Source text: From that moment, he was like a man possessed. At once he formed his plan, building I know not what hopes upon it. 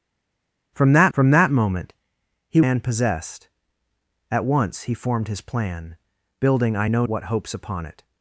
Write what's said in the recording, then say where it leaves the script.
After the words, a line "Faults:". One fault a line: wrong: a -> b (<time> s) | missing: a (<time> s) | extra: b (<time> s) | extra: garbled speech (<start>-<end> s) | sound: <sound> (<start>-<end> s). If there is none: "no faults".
From that from that moment, he man possessed. At once he formed his plan, building I know what hopes upon it.
Faults:
extra: from that (1.1 s)
missing: was like a (2.6 s)
missing: not (7.1 s)